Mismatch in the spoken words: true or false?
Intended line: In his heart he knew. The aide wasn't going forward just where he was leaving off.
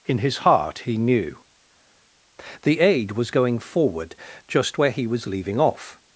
true